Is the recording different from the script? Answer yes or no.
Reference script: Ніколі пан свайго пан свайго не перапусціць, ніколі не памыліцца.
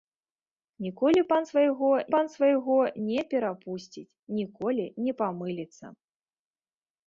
no